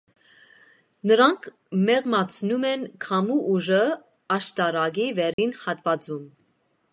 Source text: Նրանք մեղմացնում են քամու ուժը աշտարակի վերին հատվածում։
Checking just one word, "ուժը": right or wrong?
right